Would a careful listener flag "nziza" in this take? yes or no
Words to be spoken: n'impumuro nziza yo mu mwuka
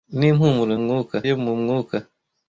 yes